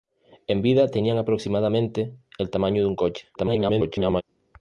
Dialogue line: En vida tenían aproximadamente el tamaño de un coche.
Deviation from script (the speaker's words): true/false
true